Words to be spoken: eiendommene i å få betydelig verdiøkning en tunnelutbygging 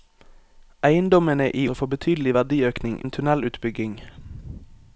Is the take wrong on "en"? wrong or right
right